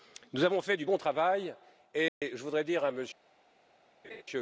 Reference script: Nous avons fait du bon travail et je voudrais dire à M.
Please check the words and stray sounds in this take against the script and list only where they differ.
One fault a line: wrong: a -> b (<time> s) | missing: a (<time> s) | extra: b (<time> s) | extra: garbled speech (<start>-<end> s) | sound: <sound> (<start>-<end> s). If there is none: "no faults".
sound: dropout (2.1-2.2 s)
sound: laugh (4.0-4.2 s)